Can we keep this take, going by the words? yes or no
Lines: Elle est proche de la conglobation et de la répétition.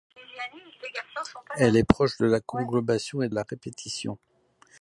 no